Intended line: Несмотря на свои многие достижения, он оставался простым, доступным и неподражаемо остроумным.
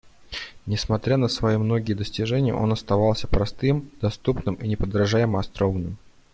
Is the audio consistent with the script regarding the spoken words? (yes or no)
yes